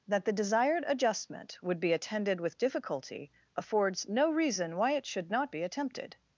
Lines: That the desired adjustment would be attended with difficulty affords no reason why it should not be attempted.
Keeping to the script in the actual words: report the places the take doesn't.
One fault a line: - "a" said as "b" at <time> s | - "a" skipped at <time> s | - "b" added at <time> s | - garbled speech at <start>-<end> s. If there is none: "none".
none